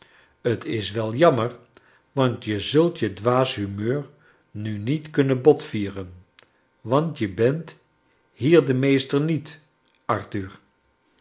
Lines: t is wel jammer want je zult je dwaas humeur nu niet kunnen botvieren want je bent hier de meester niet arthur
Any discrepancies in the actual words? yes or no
no